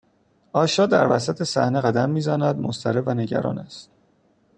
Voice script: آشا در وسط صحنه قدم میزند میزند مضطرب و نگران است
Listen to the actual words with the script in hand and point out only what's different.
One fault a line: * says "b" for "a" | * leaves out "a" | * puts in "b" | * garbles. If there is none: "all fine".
* leaves out "میزند"